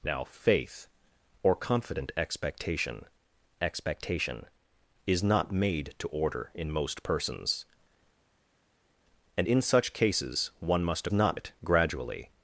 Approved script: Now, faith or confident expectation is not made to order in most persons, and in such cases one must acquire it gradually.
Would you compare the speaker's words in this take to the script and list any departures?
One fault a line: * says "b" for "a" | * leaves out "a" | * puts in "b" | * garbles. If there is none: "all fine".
* puts in "expectation"
* says "not" for "acquire"